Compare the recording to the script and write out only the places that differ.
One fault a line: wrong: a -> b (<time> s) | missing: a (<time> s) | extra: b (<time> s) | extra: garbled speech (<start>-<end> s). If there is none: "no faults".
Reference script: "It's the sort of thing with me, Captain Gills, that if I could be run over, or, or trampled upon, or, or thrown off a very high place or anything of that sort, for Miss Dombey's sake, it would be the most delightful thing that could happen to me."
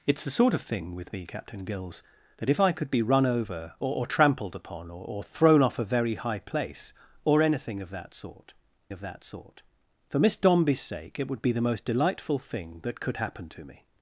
extra: of that sort (8.9 s)